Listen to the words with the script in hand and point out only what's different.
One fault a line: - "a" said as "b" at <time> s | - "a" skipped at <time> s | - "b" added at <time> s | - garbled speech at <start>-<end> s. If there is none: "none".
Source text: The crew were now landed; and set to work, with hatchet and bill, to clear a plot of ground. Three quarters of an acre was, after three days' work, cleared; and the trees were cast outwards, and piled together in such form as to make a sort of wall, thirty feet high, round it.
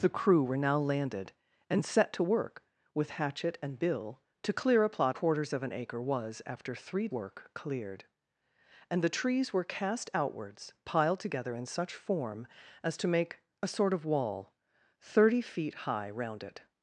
- "of ground Three" skipped at 5.2 s
- "days" skipped at 7.1 s
- "and" skipped at 10.7 s